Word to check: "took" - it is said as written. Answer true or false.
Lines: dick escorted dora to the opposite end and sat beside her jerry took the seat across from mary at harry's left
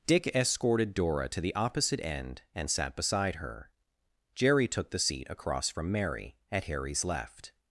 true